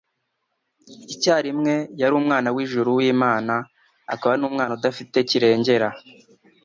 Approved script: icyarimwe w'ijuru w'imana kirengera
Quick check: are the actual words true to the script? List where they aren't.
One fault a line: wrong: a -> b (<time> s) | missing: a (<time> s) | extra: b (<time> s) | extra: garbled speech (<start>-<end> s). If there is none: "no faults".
extra: yari umwana (2.0 s)
extra: akaba n'umwana udafite (4.1 s)